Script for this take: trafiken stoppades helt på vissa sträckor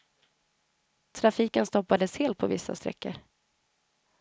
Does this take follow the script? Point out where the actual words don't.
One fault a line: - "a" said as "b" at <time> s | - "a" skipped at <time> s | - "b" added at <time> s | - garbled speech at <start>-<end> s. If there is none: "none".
none